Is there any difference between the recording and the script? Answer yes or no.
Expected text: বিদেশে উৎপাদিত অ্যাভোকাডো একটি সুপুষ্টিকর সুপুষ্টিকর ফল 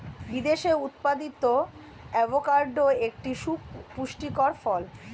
yes